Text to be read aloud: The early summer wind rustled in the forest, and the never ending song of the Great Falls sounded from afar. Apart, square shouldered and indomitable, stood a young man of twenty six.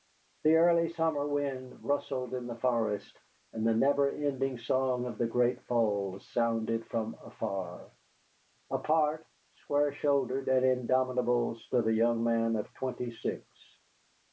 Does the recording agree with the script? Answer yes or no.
yes